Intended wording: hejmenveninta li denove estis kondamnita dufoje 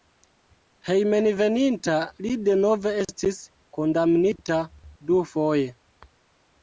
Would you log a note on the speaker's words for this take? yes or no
no